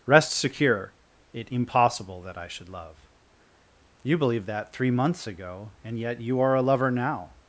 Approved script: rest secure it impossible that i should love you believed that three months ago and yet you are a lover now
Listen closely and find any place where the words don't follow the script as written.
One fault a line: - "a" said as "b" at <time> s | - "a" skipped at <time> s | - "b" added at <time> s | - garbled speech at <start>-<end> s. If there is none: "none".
none